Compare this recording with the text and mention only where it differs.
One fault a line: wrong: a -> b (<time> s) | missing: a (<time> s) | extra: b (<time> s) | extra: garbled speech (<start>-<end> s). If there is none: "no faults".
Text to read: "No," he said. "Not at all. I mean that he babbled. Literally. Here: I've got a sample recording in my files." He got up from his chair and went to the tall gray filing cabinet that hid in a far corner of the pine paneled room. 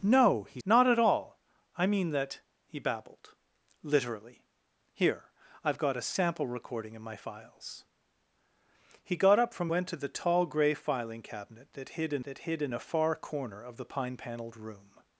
missing: said (0.6 s)
missing: his chair and (9.7 s)
extra: that hid in (12.2 s)